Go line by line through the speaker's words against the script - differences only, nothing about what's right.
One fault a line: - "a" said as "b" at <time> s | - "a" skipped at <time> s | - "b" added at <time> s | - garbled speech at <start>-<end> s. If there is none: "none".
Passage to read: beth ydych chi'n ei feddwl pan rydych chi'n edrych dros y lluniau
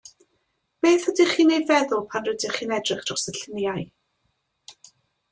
none